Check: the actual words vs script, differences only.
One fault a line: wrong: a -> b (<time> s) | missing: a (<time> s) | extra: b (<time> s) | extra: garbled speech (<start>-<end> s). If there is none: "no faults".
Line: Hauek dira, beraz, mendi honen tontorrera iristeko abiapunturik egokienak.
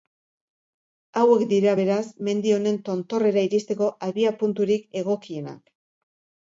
no faults